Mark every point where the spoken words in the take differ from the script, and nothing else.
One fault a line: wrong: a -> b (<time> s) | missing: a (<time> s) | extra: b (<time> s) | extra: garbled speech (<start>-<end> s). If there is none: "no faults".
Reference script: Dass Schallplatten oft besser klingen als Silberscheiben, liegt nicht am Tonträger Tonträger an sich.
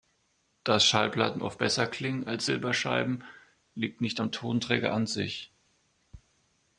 missing: Tonträger (4.9 s)